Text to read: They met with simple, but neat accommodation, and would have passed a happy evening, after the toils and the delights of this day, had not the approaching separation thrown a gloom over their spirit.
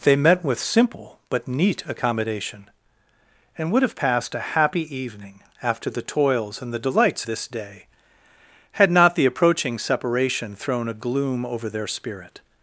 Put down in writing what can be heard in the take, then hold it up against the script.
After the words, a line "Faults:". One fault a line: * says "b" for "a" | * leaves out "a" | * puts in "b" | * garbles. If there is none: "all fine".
They met with simple, but neat accommodation, and would have passed a happy evening, after the toils and the delights this day, had not the approaching separation thrown a gloom over their spirit.
Faults:
* leaves out "of"